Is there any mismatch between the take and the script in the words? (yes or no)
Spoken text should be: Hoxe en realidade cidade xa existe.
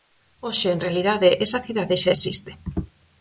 yes